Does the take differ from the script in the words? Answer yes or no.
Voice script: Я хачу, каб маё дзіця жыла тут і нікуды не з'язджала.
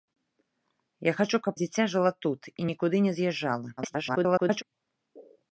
yes